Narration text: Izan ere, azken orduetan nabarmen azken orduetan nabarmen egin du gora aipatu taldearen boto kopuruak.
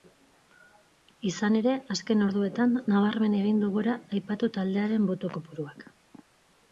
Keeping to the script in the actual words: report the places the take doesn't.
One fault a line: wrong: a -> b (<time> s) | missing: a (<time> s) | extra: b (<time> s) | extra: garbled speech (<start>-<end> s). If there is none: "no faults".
missing: azken orduetan nabarmen (3.3 s)